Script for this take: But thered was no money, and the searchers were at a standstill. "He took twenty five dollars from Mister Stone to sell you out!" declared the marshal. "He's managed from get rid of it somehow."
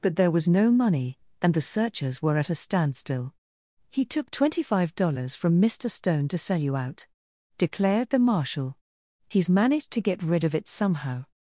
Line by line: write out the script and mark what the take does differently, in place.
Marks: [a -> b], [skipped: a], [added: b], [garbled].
But [thered -> there] was no money, and the searchers were at a standstill. "He took twenty five dollars from Mister Stone to sell you out!" declared the marshal. "He's managed [from -> to] get rid of it somehow."